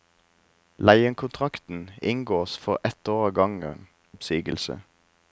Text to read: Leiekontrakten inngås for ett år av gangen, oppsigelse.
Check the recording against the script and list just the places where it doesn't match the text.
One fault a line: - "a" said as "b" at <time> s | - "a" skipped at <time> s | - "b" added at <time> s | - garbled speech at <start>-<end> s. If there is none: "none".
none